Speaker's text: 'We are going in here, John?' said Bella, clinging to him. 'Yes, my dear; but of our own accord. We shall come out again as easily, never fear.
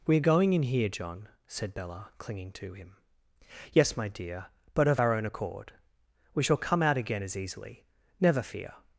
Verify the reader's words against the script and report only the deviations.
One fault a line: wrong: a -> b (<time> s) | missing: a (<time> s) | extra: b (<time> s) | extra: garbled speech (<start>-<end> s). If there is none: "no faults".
no faults